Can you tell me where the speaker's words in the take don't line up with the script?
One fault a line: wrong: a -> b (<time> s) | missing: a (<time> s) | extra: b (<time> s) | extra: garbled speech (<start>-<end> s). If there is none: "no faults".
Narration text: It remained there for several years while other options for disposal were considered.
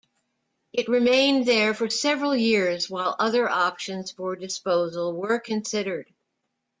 no faults